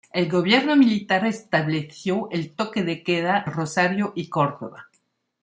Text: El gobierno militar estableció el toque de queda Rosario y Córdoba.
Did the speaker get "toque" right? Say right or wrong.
right